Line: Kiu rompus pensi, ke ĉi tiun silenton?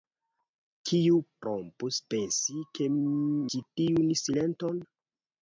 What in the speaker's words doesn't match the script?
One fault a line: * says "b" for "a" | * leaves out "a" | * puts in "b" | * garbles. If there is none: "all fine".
all fine